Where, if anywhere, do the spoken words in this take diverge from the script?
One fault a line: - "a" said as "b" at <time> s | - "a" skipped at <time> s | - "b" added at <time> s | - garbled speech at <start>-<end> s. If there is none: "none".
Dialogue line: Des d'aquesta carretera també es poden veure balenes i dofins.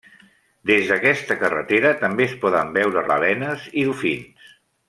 none